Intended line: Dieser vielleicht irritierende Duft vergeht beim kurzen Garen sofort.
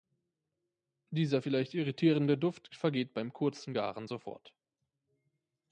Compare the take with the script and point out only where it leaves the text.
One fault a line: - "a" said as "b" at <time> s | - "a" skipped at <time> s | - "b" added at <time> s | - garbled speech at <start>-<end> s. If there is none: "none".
none